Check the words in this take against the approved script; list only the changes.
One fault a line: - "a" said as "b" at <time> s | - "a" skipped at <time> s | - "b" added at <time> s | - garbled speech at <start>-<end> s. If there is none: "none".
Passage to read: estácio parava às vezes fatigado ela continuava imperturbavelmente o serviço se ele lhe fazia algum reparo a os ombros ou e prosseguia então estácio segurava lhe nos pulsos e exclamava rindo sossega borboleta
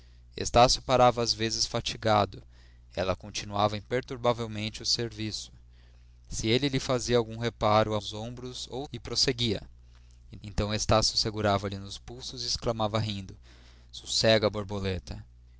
none